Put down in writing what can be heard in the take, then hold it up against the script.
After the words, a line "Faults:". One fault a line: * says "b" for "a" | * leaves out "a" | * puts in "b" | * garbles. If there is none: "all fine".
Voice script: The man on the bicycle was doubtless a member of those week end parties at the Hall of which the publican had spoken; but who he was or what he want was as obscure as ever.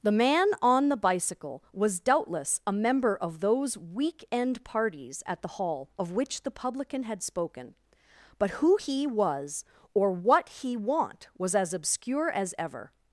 The man on the bicycle was doubtless a member of those week end parties at the Hall of which the publican had spoken; but who he was or what he want was as obscure as ever.
Faults:
all fine